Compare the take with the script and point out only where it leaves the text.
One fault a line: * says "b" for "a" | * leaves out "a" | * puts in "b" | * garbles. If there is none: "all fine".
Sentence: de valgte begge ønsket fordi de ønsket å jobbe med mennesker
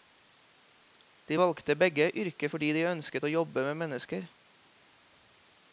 * says "yrket" for "ønsket"